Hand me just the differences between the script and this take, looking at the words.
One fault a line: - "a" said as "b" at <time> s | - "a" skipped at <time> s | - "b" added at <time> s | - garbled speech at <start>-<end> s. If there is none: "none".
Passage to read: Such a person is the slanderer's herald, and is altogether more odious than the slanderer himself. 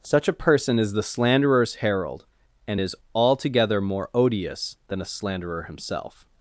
- "the" said as "a" at 5.0 s